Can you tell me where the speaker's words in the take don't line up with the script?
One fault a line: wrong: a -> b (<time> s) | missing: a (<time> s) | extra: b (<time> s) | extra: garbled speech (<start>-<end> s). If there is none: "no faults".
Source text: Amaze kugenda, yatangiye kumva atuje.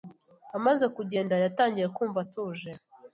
no faults